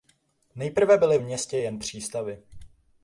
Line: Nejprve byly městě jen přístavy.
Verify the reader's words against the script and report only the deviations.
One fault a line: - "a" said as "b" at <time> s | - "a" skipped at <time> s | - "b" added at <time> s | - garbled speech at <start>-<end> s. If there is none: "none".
none